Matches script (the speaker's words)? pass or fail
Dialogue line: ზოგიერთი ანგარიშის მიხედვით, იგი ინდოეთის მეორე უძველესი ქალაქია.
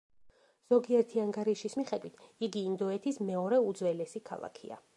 pass